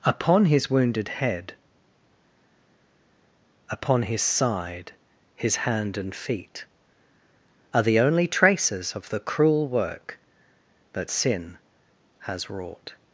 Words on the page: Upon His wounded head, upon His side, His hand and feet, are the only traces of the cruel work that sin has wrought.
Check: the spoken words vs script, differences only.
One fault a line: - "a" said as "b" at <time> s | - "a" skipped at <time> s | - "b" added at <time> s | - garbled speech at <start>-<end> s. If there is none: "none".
none